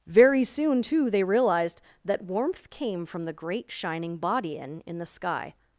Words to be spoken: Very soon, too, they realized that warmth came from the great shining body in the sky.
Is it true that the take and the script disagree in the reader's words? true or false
true